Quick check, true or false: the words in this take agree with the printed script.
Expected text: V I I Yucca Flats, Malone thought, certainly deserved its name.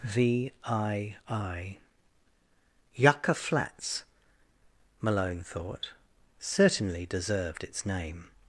true